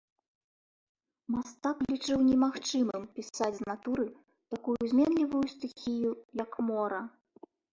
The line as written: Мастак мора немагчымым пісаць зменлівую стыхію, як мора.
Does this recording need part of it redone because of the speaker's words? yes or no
yes